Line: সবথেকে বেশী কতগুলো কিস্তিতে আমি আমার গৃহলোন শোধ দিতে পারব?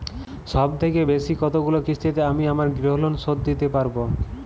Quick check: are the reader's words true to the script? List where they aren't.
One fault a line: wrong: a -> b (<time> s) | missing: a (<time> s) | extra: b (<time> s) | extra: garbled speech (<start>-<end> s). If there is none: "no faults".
no faults